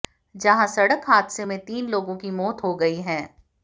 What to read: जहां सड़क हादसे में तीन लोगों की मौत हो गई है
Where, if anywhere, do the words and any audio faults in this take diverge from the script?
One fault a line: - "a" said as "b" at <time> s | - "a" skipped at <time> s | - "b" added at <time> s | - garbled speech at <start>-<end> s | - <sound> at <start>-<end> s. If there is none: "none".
none